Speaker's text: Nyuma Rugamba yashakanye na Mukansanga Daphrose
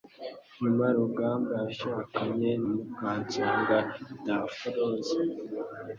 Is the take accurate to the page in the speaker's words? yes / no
no